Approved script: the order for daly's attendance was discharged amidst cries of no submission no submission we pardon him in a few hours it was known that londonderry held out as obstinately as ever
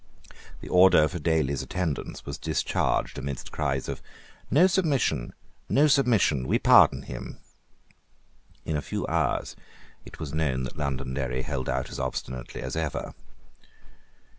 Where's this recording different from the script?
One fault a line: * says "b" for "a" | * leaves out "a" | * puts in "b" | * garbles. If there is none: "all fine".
all fine